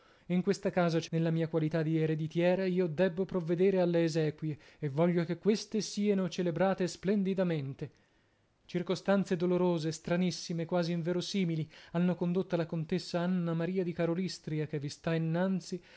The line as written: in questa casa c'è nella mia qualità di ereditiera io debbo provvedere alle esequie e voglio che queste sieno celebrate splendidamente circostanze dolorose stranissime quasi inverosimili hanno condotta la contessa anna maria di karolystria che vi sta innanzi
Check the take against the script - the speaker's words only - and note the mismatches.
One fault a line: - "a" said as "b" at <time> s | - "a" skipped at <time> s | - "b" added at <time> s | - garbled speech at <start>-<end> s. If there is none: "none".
none